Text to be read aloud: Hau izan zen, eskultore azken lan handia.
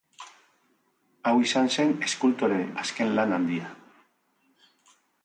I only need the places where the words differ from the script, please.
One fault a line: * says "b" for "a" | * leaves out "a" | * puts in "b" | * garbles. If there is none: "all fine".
all fine